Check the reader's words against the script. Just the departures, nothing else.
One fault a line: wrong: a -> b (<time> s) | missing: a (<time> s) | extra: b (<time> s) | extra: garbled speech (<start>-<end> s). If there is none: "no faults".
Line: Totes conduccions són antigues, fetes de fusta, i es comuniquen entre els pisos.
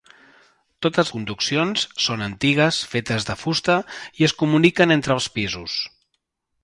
no faults